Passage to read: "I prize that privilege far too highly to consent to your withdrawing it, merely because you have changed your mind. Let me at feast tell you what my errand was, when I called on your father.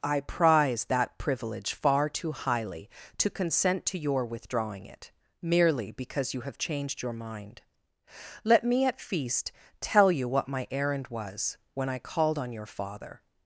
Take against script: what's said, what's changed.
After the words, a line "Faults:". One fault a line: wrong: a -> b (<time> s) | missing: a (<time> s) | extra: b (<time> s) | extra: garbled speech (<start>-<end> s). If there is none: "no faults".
"I prize that privilege far too highly to consent to your withdrawing it, merely because you have changed your mind. Let me at feast tell you what my errand was, when I called on your father.
Faults:
no faults